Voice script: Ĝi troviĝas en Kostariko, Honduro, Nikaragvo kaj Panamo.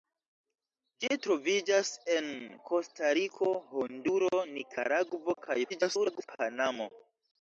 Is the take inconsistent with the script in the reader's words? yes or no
yes